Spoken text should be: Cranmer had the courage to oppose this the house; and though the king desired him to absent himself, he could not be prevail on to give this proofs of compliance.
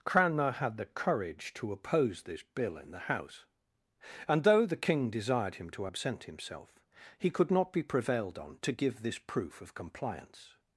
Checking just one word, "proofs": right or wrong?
wrong